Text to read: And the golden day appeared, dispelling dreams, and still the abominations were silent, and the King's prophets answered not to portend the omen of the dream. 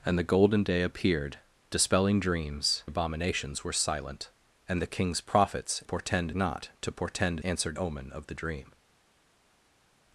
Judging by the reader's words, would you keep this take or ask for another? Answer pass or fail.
fail